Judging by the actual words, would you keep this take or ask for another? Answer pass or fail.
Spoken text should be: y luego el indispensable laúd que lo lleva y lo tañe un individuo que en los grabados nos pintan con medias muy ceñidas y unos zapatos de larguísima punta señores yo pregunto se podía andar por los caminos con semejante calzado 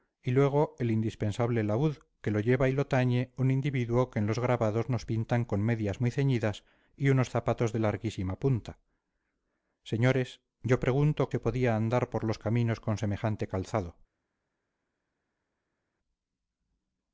pass